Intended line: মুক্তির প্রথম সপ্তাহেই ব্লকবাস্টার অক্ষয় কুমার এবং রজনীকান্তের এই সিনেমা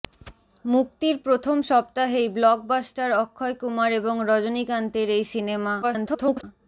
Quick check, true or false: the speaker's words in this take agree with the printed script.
false